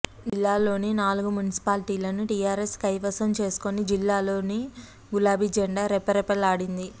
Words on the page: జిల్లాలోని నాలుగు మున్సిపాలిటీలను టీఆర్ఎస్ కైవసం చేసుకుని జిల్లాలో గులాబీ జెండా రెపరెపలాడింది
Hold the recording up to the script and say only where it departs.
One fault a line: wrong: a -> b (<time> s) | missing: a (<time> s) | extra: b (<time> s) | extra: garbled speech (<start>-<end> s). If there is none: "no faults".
no faults